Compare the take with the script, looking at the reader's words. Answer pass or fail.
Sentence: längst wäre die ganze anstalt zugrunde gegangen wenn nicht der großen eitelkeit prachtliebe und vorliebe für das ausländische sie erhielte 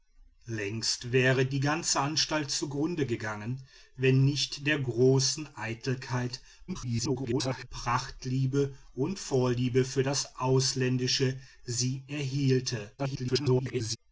fail